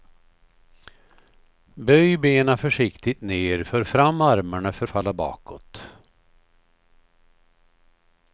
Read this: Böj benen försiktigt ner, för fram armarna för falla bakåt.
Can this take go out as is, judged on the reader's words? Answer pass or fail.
pass